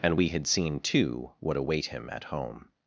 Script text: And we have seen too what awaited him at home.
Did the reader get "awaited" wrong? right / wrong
wrong